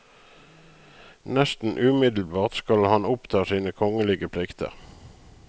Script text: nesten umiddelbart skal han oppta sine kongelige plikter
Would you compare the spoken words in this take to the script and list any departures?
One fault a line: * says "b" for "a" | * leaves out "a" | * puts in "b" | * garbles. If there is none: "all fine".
all fine